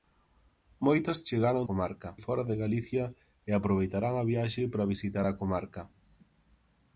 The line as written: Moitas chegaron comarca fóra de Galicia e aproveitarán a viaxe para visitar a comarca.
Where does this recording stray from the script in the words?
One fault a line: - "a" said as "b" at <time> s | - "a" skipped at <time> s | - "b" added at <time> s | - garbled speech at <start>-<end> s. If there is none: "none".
none